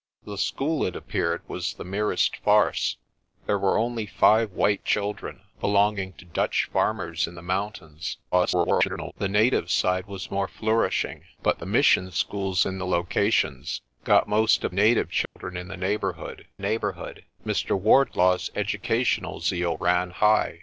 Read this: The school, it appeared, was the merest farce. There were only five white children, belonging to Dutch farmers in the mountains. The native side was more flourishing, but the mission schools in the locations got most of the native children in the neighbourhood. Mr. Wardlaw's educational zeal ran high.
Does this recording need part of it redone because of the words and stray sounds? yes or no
yes